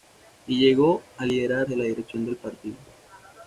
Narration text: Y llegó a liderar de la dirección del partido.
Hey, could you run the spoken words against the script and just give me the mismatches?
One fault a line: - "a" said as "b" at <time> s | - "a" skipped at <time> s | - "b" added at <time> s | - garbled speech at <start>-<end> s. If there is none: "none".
none